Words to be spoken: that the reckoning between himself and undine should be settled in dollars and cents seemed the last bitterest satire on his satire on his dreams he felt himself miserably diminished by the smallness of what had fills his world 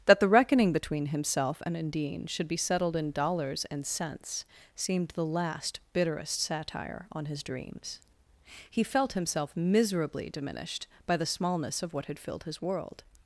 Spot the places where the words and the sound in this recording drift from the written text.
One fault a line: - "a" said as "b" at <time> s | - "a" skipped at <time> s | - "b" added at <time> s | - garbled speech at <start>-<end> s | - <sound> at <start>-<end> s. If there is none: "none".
- "satire on his" skipped at 7.4 s
- "fills" said as "filled" at 12.2 s